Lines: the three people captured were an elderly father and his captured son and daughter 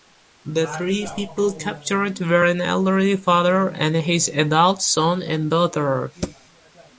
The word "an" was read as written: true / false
true